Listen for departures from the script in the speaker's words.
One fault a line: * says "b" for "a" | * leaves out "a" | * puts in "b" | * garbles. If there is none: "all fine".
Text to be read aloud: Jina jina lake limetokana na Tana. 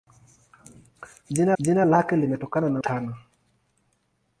all fine